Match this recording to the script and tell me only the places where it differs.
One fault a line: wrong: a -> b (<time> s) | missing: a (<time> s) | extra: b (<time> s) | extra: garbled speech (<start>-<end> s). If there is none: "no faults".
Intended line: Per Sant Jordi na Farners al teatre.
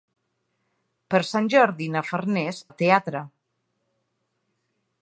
no faults